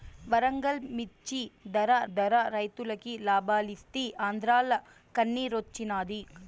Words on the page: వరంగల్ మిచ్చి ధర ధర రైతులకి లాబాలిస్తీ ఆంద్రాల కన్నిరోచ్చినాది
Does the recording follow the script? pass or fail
pass